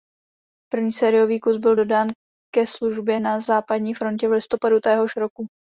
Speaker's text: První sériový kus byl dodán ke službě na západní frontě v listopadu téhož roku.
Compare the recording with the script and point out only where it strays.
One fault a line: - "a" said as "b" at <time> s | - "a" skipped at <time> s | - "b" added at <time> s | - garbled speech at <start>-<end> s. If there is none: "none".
none